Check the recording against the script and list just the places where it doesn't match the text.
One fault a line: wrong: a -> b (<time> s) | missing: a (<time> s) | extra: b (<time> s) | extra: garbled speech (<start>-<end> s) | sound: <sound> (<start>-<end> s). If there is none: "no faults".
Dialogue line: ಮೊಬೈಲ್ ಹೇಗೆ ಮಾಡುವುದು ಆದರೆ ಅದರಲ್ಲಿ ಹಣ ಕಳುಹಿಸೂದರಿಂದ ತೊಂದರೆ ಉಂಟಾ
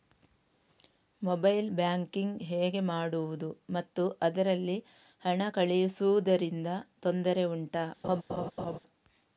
extra: ಬ್ಯಾಂಕಿಂಗ್ (1.7 s)
wrong: ಆದರೆ -> ಮತ್ತು (3.7 s)
sound: laugh (8.0-8.8 s)